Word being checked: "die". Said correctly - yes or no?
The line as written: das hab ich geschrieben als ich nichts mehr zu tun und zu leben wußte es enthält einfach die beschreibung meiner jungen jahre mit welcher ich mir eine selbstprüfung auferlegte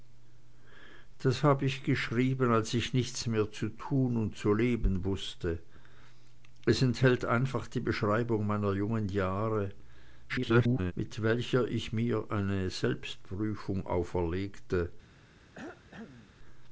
yes